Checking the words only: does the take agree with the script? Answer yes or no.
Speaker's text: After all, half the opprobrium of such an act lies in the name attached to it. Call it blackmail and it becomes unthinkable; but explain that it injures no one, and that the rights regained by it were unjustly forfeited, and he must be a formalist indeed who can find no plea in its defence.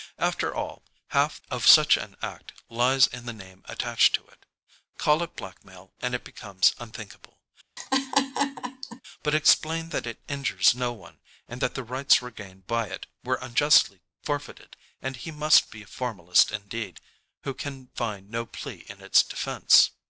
no